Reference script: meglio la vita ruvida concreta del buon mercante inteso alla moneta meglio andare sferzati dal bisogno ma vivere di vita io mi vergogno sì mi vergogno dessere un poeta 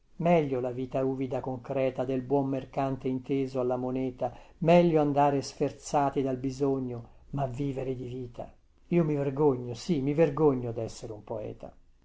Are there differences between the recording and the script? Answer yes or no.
no